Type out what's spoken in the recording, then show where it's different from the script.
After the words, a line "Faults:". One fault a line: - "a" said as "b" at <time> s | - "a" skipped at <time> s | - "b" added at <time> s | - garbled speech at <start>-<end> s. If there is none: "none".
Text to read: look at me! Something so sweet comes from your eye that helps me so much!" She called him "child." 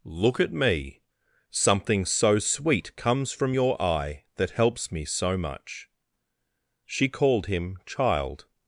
look at me! Something so sweet comes from your eye that helps me so much!" She called him "child."
Faults:
none